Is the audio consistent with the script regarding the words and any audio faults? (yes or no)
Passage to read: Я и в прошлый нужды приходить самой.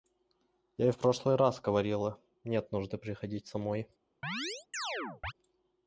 no